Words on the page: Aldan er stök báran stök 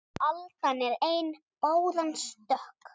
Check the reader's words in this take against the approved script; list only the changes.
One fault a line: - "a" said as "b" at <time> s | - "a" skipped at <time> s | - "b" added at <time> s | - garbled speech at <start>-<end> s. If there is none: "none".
- "stök" said as "ein" at 1.1 s